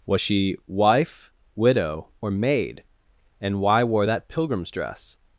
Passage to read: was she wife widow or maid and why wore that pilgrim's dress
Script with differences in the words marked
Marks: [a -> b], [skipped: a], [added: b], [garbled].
was she wife widow or maid and why wore that pilgrim's dress